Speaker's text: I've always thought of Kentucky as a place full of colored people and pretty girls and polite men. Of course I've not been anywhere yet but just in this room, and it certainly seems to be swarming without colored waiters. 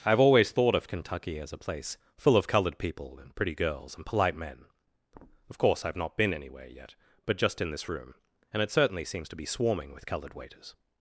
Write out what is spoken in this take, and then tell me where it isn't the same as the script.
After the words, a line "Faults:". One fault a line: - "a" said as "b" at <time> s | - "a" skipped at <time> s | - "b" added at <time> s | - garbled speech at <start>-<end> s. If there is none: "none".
I've always thought of Kentucky as a place full of colored people and pretty girls and polite men. Of course I've not been anywhere yet but just in this room, and it certainly seems to be swarming with colored waiters.
Faults:
- "without" said as "with" at 9.9 s